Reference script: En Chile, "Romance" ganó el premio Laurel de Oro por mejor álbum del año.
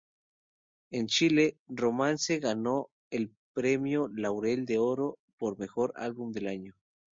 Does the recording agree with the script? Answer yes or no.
yes